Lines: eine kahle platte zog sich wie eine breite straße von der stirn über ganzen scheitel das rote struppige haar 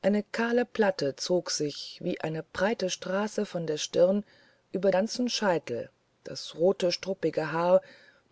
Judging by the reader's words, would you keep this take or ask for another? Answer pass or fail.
pass